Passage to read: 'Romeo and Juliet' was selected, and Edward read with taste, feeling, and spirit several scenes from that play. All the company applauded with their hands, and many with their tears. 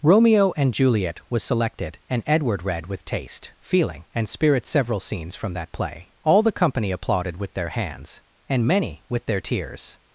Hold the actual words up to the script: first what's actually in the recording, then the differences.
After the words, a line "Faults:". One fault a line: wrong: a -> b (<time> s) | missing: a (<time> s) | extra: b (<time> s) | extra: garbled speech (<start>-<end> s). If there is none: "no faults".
'Romeo and Juliet' was selected, and Edward read with taste, feeling, and spirit several scenes from that play. All the company applauded with their hands, and many with their tears.
Faults:
no faults